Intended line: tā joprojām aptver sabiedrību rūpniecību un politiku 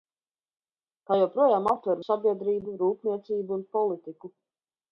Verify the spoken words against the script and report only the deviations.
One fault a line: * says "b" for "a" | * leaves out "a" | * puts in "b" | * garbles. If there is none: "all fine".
all fine